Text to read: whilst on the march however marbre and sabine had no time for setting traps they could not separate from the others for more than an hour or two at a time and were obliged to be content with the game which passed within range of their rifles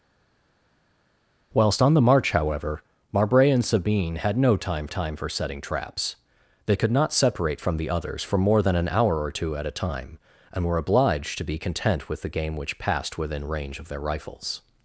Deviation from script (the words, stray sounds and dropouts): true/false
true